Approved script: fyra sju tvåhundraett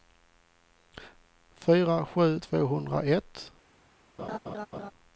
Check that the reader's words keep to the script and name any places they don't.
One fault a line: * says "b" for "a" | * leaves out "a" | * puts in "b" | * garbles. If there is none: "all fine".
all fine